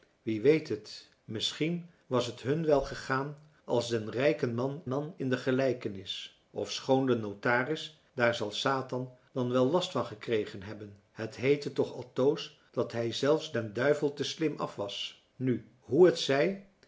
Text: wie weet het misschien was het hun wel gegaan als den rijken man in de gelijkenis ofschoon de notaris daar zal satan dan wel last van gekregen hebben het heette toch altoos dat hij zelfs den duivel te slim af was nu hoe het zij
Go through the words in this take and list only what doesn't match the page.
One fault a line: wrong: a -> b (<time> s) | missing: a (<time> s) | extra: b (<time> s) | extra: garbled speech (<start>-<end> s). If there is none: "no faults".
extra: man (4.9 s)